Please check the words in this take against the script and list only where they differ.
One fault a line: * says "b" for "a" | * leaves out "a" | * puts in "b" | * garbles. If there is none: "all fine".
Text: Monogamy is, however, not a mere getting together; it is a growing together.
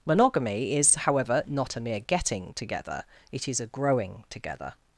all fine